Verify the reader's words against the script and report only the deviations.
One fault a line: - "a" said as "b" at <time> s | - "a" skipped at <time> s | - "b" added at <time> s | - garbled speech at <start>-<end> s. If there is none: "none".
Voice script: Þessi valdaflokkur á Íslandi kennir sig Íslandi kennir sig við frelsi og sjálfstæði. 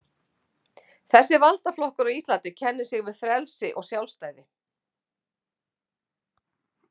- "Íslandi kennir sig" skipped at 3.0 s